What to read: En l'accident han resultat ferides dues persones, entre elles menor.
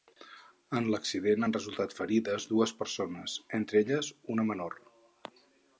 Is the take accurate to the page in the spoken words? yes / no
no